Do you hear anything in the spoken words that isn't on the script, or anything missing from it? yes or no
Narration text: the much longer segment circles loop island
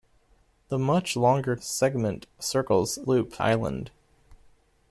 no